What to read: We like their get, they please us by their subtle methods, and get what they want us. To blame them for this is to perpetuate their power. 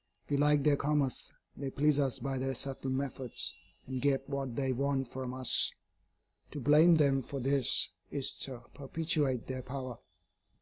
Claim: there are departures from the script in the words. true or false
true